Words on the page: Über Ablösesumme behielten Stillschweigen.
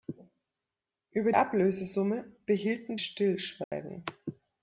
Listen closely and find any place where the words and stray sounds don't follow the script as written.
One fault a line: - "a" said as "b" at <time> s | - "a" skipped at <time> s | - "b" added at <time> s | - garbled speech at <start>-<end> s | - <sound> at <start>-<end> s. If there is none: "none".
- dropout at 3.6-3.7 s